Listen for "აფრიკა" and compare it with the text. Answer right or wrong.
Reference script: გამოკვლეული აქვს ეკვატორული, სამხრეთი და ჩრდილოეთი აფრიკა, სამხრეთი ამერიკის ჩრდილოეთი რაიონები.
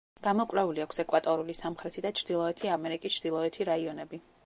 wrong